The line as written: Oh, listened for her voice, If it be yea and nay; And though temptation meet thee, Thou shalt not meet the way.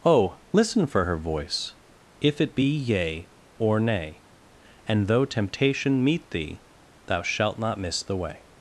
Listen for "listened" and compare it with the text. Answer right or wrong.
wrong